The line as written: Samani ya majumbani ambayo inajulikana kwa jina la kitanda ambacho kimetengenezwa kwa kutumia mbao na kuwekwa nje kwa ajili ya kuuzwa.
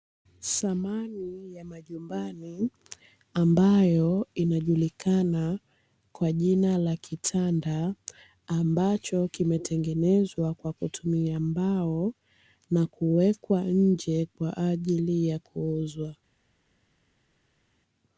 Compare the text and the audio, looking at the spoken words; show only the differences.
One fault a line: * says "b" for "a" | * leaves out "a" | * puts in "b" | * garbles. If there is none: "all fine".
all fine